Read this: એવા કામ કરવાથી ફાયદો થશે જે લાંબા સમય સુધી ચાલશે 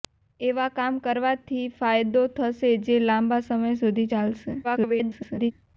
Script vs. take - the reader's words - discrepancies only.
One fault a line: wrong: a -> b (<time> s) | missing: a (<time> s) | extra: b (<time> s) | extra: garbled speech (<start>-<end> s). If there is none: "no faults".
extra: garbled speech (4.6-5.5 s)